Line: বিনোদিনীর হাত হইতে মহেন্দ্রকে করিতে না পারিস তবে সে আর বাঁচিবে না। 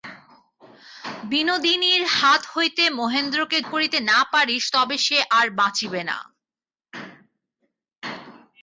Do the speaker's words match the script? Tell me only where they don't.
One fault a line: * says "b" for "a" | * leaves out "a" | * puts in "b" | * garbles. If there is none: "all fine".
all fine